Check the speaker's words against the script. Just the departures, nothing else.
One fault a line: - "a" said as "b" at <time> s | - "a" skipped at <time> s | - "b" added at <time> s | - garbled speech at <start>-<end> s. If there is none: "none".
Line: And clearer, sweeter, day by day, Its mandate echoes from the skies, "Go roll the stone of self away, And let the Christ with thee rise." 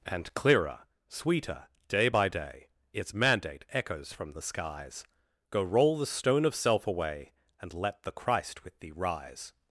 none